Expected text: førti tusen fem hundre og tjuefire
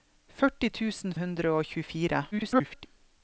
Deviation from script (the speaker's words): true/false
true